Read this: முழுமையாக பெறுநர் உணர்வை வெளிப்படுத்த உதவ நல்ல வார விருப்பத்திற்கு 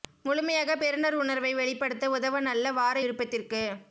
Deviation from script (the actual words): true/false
false